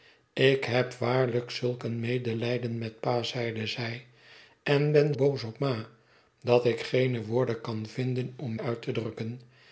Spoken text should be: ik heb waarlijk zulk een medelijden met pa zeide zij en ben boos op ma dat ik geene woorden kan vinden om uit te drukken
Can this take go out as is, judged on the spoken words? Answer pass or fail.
pass